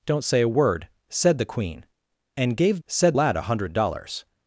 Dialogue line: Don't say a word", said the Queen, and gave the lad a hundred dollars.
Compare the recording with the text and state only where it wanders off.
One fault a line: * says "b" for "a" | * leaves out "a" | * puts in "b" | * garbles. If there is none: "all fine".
* says "said" for "the"